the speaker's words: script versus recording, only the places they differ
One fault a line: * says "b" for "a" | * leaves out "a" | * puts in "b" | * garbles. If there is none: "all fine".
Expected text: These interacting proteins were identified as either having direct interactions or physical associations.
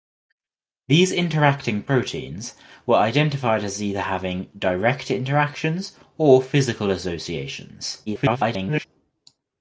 * garbles